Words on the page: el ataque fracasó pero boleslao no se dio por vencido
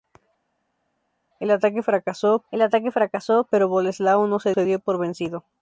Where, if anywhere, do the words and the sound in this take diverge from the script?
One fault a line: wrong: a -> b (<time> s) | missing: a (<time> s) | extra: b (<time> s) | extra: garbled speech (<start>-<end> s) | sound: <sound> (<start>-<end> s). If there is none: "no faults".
extra: el ataque fracasó (2.5 s)
extra: se (4.5 s)